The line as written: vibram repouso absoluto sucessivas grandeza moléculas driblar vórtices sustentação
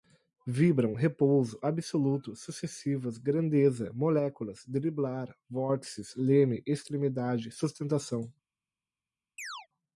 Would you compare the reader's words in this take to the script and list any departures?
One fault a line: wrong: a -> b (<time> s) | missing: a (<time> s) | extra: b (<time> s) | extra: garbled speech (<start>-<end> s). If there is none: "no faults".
extra: leme extremidade (6.2 s)